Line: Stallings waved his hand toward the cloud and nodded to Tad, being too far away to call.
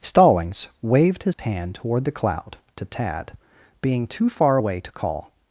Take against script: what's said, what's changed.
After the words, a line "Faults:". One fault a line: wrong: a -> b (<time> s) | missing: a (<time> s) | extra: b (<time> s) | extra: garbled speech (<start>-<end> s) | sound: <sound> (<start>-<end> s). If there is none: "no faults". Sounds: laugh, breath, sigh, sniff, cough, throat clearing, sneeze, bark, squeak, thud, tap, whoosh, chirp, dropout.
Stallings waved his hand toward the cloud to Tad, being too far away to call.
Faults:
sound: dropout (1.3-1.4 s)
missing: and nodded (2.6 s)